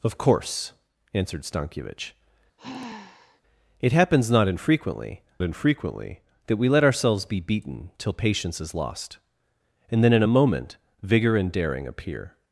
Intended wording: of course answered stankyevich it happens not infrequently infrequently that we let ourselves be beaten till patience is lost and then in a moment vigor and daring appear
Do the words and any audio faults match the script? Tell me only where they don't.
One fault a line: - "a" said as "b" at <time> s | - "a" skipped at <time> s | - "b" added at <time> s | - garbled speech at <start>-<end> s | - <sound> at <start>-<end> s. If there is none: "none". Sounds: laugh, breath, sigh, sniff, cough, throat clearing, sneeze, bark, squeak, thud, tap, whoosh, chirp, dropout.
- sigh at 2.6-3.4 s